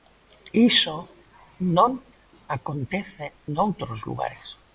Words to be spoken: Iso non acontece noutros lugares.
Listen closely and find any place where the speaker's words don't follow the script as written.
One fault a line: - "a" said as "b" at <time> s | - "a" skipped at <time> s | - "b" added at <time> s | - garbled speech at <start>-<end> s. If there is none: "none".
none